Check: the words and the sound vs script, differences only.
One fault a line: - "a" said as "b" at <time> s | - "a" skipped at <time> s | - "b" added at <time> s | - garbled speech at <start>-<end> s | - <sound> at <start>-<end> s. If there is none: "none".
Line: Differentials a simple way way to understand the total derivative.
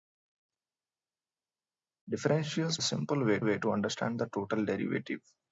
none